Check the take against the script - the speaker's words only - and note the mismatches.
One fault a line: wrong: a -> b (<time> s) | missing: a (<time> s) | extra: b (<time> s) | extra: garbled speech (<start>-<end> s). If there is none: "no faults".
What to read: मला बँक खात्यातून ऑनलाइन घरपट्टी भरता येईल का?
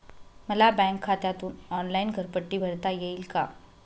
no faults